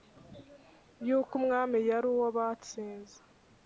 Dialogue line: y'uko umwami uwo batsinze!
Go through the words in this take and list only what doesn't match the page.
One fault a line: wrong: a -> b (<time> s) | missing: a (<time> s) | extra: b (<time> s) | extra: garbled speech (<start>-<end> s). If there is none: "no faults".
extra: yari (1.9 s)